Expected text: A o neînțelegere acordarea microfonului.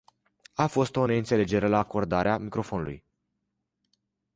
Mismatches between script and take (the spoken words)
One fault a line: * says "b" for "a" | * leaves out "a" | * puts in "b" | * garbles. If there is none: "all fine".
* puts in "fost"
* puts in "la"